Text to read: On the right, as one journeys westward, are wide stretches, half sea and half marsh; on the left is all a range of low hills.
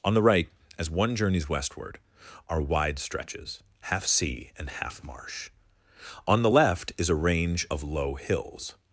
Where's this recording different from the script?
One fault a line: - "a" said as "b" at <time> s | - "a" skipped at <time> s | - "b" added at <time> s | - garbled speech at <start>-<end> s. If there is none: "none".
- "all" skipped at 7.1 s